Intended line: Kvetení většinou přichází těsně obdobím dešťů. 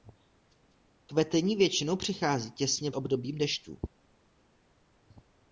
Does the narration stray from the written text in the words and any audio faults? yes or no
no